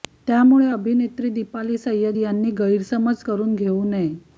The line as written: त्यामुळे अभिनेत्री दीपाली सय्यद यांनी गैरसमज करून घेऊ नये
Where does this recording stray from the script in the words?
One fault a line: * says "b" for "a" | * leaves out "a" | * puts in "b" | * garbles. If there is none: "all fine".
all fine